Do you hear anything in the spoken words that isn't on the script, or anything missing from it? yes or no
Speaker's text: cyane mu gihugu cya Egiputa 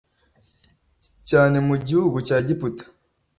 no